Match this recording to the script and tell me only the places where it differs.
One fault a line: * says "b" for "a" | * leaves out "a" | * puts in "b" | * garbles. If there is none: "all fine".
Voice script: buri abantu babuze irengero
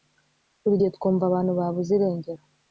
* puts in "gihe twumva"